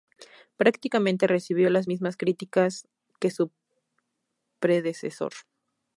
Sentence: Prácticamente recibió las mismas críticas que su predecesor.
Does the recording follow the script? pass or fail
pass